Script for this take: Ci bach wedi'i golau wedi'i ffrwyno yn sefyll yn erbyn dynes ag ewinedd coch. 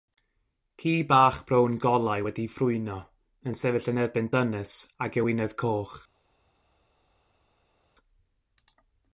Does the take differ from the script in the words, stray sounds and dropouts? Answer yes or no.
yes